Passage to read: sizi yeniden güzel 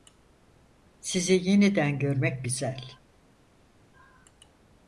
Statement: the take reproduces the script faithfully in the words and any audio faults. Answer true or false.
false